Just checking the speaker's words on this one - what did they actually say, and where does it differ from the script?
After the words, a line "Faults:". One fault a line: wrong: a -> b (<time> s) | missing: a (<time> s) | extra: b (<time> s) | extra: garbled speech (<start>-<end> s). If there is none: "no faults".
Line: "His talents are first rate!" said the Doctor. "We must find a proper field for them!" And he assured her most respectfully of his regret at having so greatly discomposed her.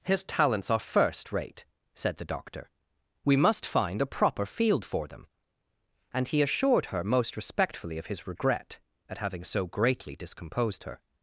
"His talents are first rate!" said the Doctor. "We must find a proper field for them!" And he assured her most respectfully of his regret at having so greatly discomposed her.
Faults:
no faults